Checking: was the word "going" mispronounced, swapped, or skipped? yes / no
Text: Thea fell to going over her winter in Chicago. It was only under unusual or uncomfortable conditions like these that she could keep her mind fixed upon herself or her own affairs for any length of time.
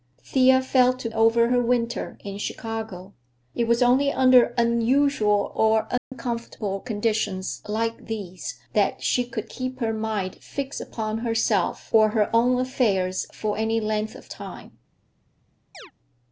yes